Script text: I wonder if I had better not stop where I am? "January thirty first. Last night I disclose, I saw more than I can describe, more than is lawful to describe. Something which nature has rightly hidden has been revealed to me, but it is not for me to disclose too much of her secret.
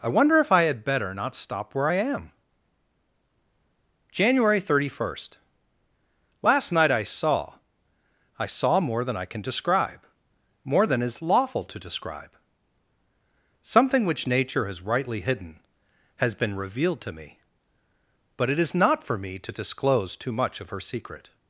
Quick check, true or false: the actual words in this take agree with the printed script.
false